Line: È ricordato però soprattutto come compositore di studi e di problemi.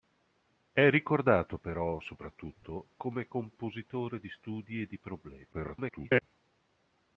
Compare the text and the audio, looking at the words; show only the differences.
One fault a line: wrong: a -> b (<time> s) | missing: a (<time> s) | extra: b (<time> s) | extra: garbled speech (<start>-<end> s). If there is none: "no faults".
extra: garbled speech (5.5-6.2 s)